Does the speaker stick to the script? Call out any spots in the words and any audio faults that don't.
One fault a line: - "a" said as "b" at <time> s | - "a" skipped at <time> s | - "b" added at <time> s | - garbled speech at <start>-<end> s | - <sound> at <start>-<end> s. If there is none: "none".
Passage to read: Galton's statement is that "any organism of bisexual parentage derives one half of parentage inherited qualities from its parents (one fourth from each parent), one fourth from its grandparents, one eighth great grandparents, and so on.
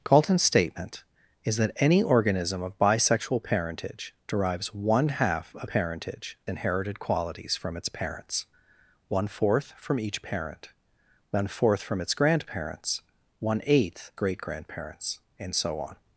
none